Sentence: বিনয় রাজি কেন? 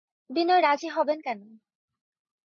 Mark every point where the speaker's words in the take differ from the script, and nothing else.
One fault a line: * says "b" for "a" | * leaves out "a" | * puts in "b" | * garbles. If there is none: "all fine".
* puts in "হবেন"